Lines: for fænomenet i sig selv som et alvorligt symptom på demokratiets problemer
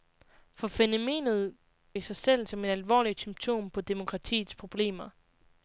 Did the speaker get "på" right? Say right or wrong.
right